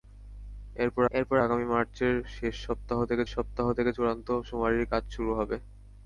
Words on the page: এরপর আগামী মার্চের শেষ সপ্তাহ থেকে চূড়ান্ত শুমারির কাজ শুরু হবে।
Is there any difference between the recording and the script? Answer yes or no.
yes